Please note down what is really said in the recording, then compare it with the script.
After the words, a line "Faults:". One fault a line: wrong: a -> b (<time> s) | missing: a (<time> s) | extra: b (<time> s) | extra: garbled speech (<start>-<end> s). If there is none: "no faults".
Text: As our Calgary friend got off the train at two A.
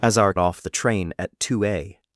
As our Off the train at two A.
Faults:
missing: Calgary friend got (0.3 s)